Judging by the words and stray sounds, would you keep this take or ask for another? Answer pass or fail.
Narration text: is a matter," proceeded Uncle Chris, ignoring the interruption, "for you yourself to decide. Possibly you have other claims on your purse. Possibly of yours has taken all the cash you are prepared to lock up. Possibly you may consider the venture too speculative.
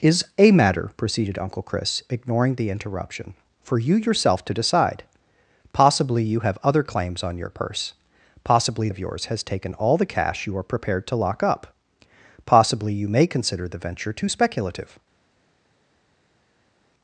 pass